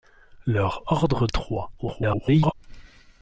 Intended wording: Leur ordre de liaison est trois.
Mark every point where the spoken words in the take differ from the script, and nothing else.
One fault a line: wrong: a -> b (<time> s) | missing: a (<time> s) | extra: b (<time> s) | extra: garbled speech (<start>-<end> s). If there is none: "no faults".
missing: de liaison (1.3 s)
extra: garbled speech (1.8-2.5 s)